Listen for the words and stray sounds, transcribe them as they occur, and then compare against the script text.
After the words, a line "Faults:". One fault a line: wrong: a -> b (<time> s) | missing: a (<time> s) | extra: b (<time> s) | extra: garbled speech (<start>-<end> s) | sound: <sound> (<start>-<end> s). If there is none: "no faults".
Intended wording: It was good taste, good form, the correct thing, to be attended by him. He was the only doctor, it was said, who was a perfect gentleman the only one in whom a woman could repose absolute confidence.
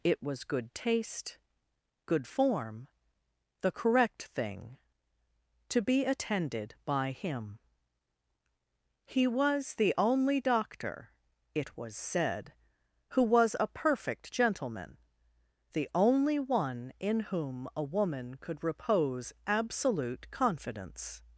It was good taste, good form, the correct thing, to be attended by him. He was the only doctor, it was said, who was a perfect gentleman the only one in whom a woman could repose absolute confidence.
Faults:
no faults